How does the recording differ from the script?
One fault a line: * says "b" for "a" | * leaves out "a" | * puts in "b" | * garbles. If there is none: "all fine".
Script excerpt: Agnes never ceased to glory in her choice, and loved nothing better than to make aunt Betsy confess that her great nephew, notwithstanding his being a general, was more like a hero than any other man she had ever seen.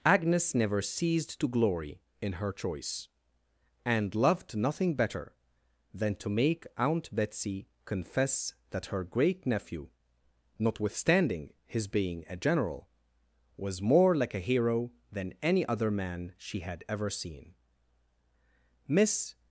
* puts in "Miss"